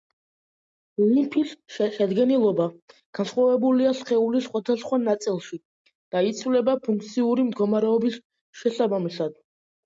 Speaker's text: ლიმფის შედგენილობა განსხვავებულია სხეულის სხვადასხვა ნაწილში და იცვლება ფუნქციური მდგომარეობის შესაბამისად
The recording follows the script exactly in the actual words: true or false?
true